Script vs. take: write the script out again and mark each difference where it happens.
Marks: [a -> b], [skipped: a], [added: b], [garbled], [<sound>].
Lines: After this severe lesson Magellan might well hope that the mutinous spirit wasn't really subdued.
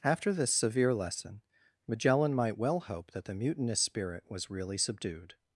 After this severe lesson Magellan might well hope that the mutinous spirit [wasn't -> was] really subdued.